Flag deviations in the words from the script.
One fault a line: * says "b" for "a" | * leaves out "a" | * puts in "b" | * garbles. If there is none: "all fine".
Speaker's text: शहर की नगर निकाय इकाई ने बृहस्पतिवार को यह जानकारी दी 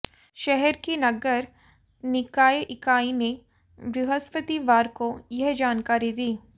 all fine